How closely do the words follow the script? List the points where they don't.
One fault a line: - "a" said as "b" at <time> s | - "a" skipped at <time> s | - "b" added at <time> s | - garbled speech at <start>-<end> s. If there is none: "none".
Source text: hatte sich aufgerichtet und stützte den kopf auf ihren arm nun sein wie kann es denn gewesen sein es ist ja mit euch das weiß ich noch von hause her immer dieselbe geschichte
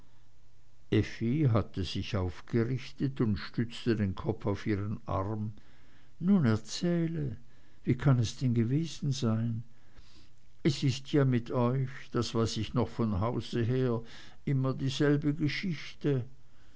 - "sein" said as "erzähle" at 6.4 s